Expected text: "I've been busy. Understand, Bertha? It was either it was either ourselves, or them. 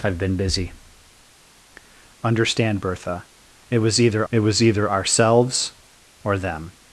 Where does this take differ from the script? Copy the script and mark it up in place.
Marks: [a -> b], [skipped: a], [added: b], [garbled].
"I've been busy. Understand, Bertha? It was either it was either ourselves, or them.